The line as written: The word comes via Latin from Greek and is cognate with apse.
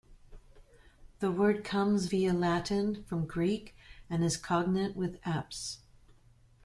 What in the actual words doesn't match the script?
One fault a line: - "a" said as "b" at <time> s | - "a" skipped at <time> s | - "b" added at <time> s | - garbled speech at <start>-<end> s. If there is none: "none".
none